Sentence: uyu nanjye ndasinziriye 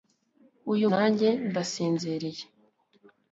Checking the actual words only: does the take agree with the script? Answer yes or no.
yes